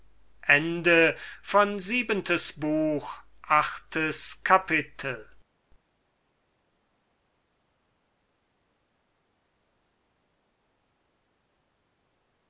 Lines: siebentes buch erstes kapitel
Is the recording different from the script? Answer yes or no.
no